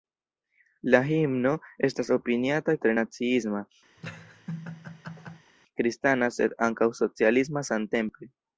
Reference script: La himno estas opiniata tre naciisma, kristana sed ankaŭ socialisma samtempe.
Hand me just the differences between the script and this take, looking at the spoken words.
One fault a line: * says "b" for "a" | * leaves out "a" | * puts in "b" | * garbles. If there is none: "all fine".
all fine